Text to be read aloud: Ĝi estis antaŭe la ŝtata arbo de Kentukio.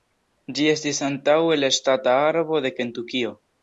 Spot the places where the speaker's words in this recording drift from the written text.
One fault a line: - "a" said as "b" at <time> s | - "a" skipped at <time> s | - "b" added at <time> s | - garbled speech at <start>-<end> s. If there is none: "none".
none